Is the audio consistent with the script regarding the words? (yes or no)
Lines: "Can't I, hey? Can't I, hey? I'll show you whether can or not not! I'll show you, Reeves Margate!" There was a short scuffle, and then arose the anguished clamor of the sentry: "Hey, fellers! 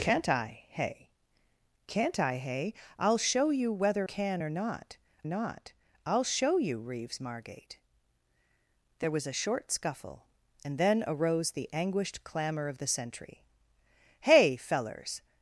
yes